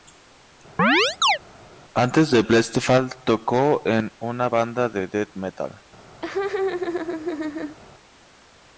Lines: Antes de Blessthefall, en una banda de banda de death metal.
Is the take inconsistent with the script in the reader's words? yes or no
yes